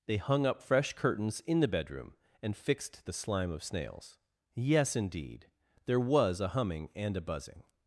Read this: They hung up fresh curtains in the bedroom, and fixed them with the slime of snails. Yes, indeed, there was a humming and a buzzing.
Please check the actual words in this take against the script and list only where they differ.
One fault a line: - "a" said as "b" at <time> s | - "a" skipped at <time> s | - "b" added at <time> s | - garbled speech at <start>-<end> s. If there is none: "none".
- "them with" skipped at 3.0 s